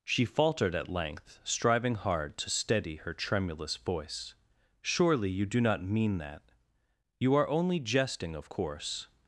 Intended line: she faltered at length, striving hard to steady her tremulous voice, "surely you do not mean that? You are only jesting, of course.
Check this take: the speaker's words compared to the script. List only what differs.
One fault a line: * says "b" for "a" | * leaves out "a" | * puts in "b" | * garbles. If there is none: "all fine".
all fine